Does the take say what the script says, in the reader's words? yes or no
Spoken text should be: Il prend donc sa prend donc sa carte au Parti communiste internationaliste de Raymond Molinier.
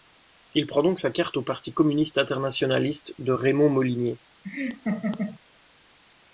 no